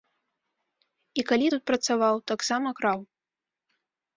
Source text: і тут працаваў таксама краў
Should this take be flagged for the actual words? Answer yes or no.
yes